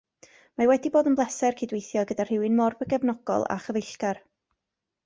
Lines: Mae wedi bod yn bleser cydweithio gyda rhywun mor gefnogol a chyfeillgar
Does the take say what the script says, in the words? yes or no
yes